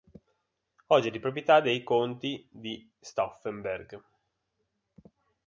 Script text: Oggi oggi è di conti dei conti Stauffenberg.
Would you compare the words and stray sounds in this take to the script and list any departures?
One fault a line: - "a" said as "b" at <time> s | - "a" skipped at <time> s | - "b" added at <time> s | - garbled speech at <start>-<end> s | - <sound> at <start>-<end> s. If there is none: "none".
- "oggi" skipped at 1.1 s
- "conti" said as "proprietà" at 1.2 s
- "di" added at 2.5 s